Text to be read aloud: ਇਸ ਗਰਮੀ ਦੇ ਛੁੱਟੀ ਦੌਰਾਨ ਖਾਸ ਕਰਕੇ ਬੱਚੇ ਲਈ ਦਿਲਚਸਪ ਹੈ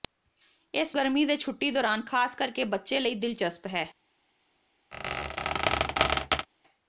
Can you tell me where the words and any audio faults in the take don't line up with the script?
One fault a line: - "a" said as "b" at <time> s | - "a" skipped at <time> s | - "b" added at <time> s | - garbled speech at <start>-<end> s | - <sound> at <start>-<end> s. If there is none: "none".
- squeak at 4.9-6.5 s